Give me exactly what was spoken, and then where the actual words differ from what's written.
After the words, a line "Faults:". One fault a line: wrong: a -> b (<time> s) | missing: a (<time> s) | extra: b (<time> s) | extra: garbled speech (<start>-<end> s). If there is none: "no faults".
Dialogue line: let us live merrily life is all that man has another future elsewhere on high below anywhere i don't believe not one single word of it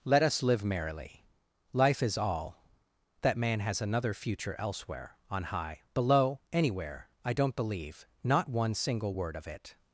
let us live merrily life is all that man has another future elsewhere on high below anywhere i don't believe not one single word of it
Faults:
no faults